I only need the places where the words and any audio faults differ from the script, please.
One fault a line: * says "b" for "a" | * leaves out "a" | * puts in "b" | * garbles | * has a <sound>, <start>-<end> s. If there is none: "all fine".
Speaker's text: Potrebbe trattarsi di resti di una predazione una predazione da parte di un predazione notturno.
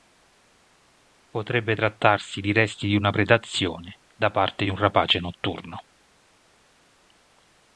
* leaves out "una predazione"
* says "rapace" for "predazione"